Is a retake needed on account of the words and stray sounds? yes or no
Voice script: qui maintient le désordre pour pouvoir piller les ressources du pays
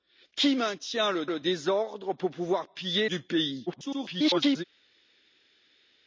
yes